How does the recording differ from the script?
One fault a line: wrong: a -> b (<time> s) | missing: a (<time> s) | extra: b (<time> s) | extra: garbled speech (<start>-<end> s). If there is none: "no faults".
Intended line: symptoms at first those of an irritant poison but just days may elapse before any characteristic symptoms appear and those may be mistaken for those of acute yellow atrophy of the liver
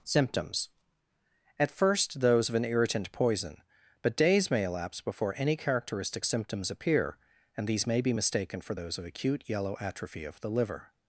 missing: just (4.2 s)
wrong: those -> these (7.7 s)